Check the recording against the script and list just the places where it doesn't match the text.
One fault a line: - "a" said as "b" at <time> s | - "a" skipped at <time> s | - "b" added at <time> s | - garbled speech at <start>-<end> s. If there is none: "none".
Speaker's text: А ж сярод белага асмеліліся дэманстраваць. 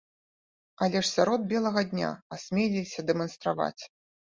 - "А" said as "Але" at 0.8 s
- "дня" added at 1.9 s